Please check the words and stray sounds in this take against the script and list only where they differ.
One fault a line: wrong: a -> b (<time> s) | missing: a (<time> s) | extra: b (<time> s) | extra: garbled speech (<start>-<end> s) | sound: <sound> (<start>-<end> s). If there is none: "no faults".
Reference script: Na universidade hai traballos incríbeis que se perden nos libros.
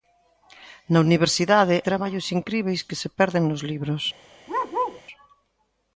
missing: hai (1.8 s)
sound: bark (4.5-5.0 s)